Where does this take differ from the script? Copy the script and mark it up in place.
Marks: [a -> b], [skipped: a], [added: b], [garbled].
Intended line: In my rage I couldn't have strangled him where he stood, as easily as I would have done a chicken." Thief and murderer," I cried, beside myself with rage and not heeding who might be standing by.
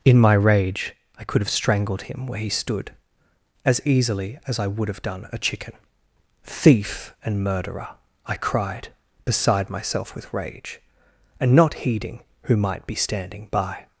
In my rage I [couldn't -> could] have strangled him where he stood, as easily as I would have done a chicken." Thief and murderer," I cried, beside myself with rage and not heeding who might be standing by.